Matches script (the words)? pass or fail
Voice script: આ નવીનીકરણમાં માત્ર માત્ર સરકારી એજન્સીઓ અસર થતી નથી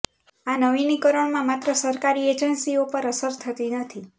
fail